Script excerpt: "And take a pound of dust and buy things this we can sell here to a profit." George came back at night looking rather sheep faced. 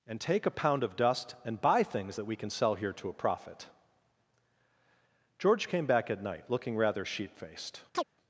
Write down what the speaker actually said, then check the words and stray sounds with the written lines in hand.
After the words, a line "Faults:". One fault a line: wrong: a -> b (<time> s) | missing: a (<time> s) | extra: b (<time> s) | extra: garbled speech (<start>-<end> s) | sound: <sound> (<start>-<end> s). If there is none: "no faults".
"And take a pound of dust and buy things that we can sell here to a profit." George came back at night looking rather sheep faced.
Faults:
wrong: this -> that (2.2 s)
sound: chirp (7.9-8.0 s)